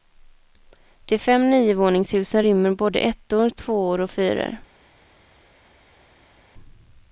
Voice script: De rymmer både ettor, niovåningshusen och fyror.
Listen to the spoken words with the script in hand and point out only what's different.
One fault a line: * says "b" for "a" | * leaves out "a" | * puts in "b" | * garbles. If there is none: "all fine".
* puts in "fem niovåningshusen"
* says "tvåor" for "niovåningshusen"